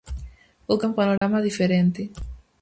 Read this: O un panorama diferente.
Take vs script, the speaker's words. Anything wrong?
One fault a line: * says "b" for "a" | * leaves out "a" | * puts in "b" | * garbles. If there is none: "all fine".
all fine